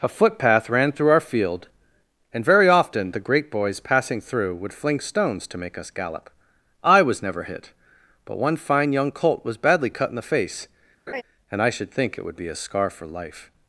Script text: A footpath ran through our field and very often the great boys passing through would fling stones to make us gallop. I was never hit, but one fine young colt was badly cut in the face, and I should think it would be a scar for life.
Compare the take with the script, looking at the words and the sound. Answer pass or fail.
fail